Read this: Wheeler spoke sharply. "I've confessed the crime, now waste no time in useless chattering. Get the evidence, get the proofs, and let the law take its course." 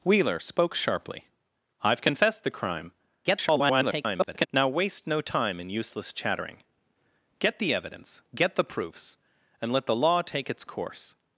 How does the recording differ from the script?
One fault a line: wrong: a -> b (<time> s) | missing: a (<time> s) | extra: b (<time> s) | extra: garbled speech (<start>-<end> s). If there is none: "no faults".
extra: garbled speech (3.2-4.5 s)